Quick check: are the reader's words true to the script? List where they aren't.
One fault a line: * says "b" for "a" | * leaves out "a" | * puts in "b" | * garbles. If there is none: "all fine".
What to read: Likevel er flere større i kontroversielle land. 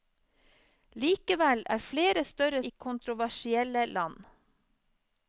all fine